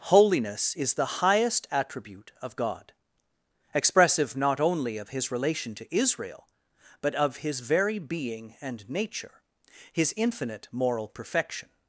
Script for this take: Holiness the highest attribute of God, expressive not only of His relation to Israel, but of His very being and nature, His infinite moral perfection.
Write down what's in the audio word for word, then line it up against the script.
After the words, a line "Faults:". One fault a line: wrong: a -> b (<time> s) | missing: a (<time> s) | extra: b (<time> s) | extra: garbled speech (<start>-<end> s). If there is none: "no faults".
Holiness is the highest attribute of God, expressive not only of His relation to Israel, but of His very being and nature, His infinite moral perfection.
Faults:
extra: is (0.8 s)